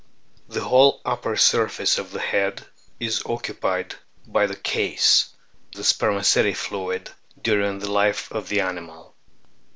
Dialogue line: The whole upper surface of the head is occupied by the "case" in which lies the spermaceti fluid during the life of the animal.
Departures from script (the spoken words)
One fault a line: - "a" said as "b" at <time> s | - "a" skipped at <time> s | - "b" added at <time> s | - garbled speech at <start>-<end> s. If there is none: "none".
- "in which lies" skipped at 5.3 s